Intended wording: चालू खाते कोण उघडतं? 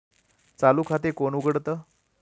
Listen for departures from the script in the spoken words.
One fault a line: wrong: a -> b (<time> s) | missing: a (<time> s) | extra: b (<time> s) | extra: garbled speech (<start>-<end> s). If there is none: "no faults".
no faults